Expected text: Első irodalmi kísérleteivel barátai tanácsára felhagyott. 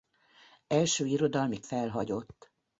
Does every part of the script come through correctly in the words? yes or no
no